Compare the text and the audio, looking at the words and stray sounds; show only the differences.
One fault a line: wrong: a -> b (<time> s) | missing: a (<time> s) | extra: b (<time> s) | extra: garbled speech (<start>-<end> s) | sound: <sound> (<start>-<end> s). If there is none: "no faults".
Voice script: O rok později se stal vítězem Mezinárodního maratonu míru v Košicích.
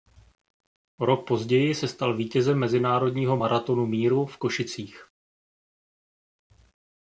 no faults